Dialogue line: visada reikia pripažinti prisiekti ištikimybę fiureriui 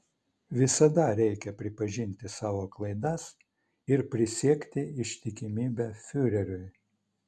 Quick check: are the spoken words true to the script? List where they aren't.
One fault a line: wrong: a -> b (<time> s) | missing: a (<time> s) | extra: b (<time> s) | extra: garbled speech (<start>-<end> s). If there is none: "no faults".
extra: savo klaidas ir (2.4 s)